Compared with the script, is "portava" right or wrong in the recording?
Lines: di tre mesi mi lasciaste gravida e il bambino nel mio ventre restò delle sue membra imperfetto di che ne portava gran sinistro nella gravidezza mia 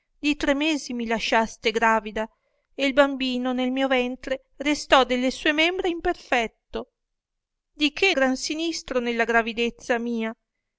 wrong